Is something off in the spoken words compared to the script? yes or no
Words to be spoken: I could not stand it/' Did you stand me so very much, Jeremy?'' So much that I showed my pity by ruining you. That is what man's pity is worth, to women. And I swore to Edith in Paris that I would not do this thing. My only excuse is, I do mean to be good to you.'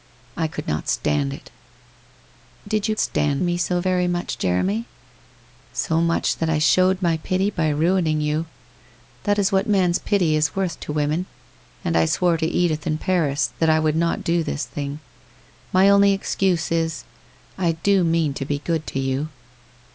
no